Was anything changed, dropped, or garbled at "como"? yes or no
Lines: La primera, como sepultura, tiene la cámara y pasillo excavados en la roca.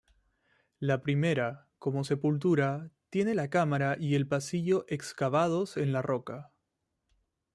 no